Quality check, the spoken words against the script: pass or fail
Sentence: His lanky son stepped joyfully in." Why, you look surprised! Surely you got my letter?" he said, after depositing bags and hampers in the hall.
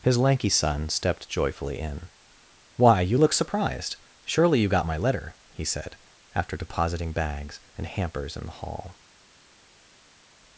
pass